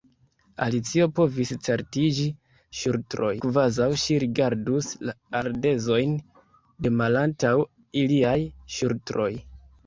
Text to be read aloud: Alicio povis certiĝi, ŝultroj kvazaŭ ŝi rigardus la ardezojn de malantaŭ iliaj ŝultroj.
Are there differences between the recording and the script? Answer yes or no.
no